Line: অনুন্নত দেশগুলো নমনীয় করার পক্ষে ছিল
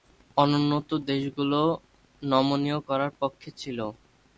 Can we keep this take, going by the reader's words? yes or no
yes